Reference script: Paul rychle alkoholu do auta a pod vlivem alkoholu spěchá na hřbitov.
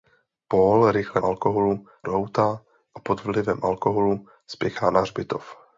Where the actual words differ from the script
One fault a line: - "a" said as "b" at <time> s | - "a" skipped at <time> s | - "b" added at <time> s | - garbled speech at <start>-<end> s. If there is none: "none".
none